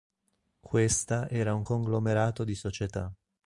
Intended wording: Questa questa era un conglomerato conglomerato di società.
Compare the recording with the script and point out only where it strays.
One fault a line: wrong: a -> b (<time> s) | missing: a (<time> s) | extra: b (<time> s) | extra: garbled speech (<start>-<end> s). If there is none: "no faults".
missing: questa (1.3 s)
missing: conglomerato (2.4 s)